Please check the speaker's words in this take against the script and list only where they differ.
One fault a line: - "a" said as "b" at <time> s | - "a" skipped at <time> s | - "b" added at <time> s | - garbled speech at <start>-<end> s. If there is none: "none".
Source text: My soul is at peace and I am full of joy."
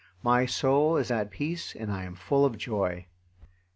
none